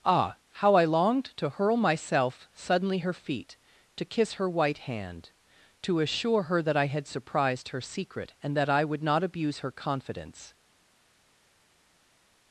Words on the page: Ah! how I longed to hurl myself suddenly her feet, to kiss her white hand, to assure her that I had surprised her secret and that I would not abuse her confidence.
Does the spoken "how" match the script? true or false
true